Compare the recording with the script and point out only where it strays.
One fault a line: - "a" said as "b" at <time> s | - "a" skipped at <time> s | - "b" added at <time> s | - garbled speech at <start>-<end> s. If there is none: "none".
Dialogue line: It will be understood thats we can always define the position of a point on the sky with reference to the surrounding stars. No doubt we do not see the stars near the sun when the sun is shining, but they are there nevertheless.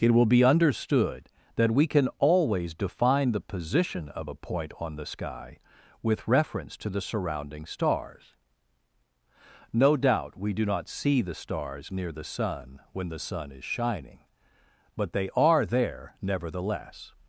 - "thats" said as "that" at 1.6 s